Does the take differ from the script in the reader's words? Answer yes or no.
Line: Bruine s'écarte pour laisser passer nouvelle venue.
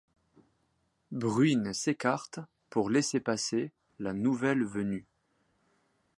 yes